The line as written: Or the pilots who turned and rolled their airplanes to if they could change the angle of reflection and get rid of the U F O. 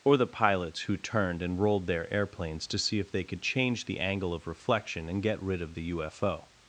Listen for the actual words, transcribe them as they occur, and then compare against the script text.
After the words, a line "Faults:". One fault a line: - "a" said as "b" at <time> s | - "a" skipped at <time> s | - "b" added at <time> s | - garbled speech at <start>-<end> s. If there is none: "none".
Or the pilots who turned and rolled their airplanes to see if they could change the angle of reflection and get rid of the U F O.
Faults:
- "see" added at 2.8 s